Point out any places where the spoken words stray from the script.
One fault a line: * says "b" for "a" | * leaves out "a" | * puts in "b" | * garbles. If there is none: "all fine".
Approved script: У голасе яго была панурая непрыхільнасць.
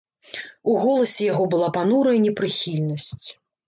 all fine